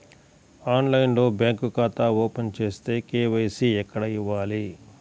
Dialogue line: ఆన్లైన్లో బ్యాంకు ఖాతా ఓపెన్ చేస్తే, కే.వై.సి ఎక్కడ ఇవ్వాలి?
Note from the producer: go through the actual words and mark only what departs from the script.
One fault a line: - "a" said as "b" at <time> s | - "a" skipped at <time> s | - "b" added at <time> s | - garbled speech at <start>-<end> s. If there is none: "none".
none